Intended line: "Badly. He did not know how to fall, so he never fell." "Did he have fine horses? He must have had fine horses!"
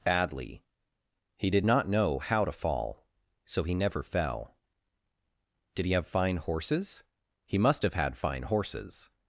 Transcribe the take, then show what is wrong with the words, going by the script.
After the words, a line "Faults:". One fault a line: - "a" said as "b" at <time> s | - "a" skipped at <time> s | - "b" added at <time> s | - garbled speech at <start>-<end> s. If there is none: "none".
"Badly. He did not know how to fall, so he never fell." "Did he have fine horses? He must have had fine horses!"
Faults:
none